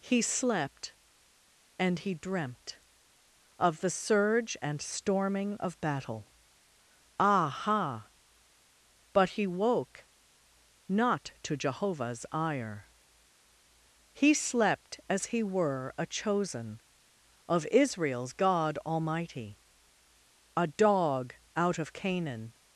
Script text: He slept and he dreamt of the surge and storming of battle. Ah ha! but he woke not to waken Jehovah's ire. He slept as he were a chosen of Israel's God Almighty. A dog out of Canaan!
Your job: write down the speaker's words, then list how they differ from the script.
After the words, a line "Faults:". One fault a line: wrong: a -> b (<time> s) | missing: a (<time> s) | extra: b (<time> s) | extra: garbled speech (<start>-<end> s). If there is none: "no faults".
He slept and he dreamt of the surge and storming of battle. Ah ha! but he woke not to Jehovah's ire. He slept as he were a chosen of Israel's God Almighty. A dog out of Canaan!
Faults:
missing: waken (11.6 s)